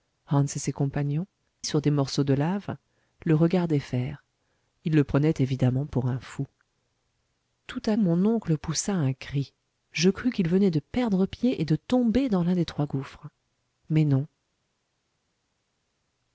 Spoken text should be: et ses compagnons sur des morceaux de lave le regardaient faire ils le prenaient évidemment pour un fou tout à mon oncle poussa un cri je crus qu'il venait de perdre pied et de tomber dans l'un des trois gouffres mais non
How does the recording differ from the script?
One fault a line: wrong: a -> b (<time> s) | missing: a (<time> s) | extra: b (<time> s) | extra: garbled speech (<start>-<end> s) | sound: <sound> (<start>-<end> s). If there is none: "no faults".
no faults